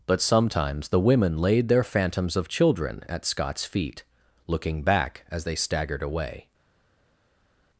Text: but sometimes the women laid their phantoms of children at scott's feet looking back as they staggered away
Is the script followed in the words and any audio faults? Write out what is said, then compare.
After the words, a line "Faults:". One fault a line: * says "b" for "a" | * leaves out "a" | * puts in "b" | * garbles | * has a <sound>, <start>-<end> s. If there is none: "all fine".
but sometimes the women laid their phantoms of children at scott's feet looking back as they staggered away
Faults:
all fine